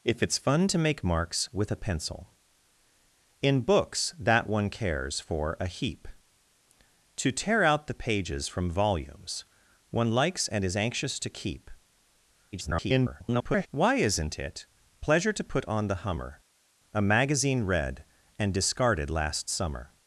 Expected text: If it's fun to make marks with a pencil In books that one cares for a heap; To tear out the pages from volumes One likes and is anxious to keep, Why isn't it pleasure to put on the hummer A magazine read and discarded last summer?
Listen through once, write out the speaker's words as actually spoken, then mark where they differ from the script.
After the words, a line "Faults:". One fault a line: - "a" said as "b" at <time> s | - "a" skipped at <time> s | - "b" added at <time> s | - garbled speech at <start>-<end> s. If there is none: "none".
If it's fun to make marks with a pencil In books that one cares for a heap; To tear out the pages from volumes One likes and is anxious to keep, [garbled] Why isn't it pleasure to put on the hummer A magazine read and discarded last summer?
Faults:
- garbled speech at 12.5-13.7 s